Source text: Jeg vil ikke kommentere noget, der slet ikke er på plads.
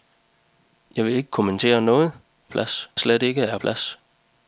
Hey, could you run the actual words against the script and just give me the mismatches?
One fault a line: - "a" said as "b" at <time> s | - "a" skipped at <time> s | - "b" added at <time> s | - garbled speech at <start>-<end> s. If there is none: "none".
- "der" said as "plads" at 2.5 s
- "på" skipped at 3.6 s